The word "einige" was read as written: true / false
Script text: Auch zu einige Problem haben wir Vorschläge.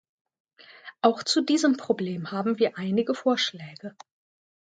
false